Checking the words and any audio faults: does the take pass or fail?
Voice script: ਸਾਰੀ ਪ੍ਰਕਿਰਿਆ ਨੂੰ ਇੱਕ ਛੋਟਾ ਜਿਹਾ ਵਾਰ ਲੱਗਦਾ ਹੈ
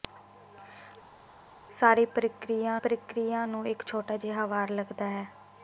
fail